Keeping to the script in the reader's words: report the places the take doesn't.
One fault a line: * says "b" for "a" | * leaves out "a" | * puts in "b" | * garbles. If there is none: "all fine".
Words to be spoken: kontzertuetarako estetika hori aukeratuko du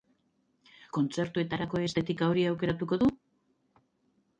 all fine